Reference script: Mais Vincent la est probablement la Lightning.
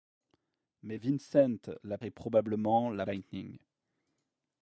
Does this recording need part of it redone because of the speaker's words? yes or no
no